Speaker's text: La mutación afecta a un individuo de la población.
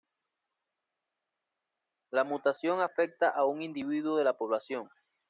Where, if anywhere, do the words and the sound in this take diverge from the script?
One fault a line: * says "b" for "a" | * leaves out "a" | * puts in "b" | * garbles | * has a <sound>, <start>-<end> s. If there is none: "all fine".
all fine